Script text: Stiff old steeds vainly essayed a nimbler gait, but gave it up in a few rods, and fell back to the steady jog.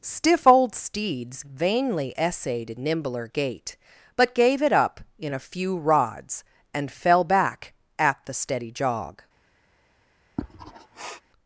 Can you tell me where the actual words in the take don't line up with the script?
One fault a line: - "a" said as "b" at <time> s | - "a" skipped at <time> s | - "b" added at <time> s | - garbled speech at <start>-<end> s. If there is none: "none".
- "a" skipped at 2.8 s
- "to" said as "at" at 8.0 s